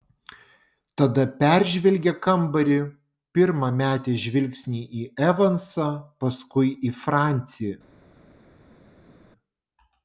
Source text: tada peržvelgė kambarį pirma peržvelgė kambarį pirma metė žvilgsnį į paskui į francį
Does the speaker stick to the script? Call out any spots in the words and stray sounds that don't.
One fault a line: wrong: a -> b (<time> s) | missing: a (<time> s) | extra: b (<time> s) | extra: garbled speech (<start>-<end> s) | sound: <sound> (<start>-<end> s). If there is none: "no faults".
missing: peržvelgė kambarį pirma (3.7 s)
extra: evansą (5.3 s)